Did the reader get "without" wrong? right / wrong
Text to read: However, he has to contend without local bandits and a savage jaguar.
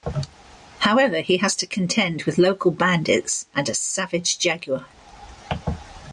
wrong